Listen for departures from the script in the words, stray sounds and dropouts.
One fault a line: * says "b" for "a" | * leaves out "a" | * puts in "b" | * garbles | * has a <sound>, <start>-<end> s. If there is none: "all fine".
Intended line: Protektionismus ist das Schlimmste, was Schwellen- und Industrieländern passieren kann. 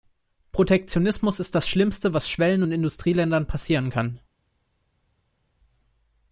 all fine